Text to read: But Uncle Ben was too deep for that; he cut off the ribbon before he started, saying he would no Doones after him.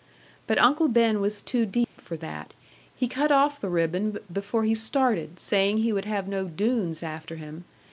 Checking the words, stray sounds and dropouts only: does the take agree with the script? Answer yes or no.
no